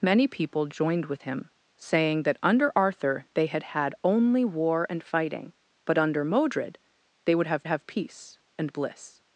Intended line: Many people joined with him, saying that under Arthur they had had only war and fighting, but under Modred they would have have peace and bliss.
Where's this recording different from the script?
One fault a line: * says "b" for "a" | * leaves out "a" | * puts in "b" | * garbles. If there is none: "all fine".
all fine